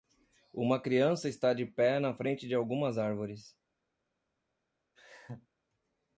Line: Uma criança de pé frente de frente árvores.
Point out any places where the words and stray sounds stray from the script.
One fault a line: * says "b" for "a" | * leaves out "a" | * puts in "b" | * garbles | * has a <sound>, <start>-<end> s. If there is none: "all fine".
* puts in "está"
* puts in "na"
* says "algumas" for "frente"
* has a laugh, 5.0-5.5 s